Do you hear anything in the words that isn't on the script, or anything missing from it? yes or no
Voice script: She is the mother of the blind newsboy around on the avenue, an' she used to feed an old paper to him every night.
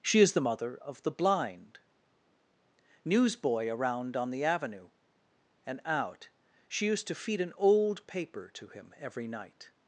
yes